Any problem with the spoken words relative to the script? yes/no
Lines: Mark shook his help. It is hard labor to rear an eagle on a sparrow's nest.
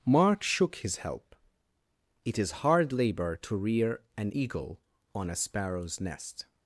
no